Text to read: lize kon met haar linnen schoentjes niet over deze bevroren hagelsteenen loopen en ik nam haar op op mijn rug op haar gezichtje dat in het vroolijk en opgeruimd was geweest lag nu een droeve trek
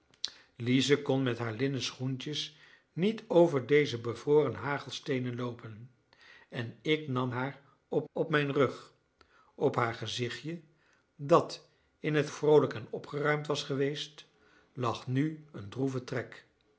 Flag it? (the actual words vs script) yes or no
no